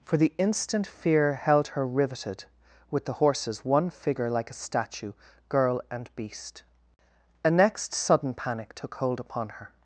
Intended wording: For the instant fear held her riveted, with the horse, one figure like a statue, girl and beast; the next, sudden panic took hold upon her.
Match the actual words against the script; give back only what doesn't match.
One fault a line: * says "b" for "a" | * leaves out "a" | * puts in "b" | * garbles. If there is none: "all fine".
* says "horses" for "horse"
* says "a" for "the"